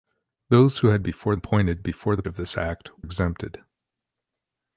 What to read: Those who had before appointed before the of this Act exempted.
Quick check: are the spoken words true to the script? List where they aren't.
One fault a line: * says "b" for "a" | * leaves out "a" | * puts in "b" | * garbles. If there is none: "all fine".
all fine